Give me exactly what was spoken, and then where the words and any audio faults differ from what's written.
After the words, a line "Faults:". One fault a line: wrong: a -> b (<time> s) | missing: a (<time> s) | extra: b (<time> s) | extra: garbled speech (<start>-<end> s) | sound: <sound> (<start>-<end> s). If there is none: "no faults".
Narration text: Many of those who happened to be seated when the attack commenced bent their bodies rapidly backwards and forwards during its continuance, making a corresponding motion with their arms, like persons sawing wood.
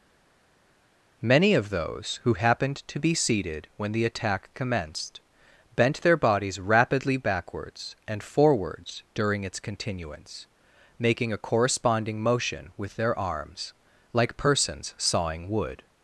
Many of those who happened to be seated when the attack commenced bent their bodies rapidly backwards and forwards during its continuance, making a corresponding motion with their arms, like persons sawing wood.
Faults:
no faults